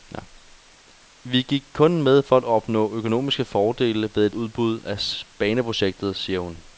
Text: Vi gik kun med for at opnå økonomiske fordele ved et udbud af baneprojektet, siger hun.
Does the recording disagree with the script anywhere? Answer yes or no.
no